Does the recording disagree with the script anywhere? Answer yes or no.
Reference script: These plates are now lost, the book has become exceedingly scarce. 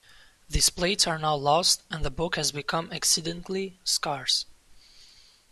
yes